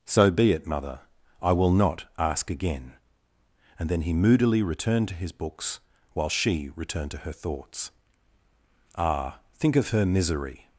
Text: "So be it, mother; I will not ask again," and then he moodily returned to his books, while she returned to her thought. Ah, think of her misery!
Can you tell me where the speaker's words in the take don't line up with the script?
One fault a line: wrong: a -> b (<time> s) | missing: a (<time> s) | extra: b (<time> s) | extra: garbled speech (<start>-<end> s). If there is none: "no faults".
wrong: thought -> thoughts (7.3 s)